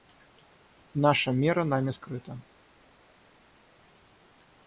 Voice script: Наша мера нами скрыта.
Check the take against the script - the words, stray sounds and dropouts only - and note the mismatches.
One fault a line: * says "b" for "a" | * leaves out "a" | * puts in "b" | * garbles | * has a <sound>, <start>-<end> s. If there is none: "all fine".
all fine